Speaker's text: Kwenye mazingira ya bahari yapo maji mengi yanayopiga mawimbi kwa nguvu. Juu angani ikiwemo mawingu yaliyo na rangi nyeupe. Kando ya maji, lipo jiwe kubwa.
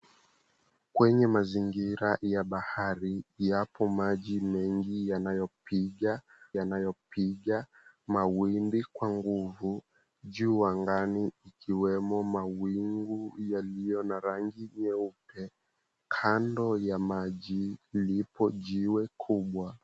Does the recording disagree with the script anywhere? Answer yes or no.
yes